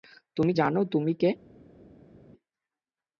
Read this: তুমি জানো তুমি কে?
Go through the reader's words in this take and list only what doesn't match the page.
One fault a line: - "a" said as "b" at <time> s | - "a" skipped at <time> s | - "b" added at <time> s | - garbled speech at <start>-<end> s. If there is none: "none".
none